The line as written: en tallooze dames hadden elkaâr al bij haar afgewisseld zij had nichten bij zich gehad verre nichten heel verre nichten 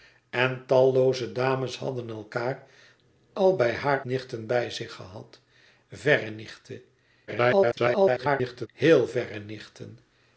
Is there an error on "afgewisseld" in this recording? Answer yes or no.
yes